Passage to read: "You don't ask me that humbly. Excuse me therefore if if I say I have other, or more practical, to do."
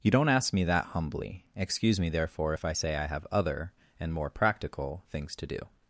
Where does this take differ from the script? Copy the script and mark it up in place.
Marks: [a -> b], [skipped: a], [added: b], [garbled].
"You don't ask me that humbly. Excuse me therefore if [skipped: if] I say I have other, [or -> and] more practical, [added: things] to do."